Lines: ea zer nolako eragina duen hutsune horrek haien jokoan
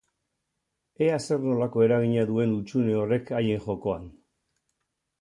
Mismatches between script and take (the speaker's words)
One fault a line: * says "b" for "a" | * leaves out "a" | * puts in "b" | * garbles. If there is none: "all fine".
all fine